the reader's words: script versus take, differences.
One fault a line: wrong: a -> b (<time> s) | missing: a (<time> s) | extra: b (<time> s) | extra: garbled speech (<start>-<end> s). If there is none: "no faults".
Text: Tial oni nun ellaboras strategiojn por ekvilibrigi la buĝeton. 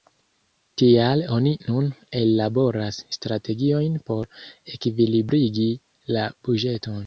no faults